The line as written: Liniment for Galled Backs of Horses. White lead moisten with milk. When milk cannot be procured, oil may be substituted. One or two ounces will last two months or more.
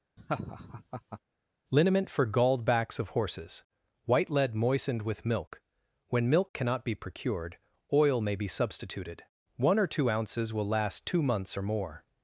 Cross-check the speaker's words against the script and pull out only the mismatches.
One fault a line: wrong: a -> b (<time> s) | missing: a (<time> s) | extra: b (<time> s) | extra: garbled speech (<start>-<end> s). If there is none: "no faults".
wrong: moisten -> moistened (4.5 s)